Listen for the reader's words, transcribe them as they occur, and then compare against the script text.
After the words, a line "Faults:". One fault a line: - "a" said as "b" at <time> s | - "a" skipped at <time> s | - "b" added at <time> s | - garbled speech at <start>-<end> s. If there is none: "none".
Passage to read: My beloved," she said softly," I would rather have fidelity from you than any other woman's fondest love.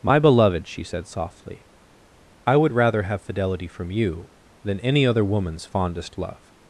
My beloved," she said softly," I would rather have fidelity from you than any other woman's fondest love.
Faults:
none